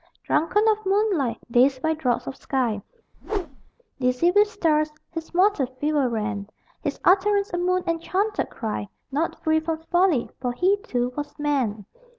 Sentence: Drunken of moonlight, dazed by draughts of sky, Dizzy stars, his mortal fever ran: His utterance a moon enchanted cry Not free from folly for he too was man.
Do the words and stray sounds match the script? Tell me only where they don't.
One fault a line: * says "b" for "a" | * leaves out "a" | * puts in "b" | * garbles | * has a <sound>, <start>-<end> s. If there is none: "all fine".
* has a whoosh, 3.1-3.7 s
* puts in "with"